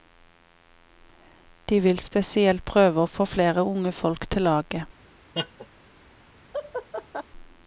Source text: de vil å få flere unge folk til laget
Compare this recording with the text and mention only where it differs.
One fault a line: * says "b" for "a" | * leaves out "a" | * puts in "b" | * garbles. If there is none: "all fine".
* puts in "spesielt prøve"